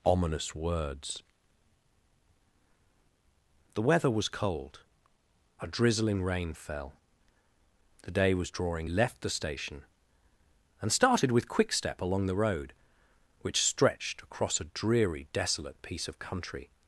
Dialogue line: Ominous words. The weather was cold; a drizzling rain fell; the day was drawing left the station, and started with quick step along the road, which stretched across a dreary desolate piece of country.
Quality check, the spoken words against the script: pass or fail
pass